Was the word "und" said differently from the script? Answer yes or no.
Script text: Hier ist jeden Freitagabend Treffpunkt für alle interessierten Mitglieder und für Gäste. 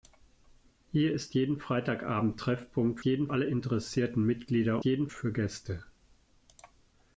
yes